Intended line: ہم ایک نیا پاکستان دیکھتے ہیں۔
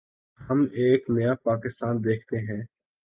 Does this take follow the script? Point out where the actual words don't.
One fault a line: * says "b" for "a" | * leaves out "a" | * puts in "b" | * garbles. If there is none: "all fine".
all fine